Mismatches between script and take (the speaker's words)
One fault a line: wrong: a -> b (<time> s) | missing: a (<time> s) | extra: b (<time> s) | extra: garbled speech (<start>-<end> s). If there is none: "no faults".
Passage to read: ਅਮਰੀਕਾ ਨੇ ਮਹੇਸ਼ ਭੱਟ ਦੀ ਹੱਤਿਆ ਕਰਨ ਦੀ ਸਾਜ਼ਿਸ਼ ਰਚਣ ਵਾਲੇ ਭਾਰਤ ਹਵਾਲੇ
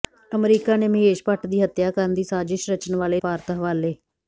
no faults